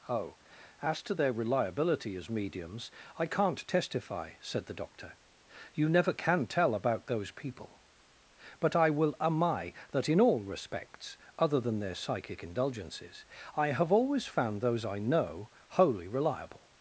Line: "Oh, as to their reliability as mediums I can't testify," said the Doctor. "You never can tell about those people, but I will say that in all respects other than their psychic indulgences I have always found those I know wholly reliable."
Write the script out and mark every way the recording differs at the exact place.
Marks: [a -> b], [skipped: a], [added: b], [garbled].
"Oh, as to their reliability as mediums I can't testify," said the Doctor. "You never can tell about those people, but I will [say -> ami] that in all respects other than their psychic indulgences I have always found those I know wholly reliable."